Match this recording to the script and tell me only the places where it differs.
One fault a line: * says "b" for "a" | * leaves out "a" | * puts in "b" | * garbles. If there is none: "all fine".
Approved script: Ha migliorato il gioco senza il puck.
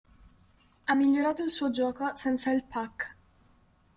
* puts in "suo"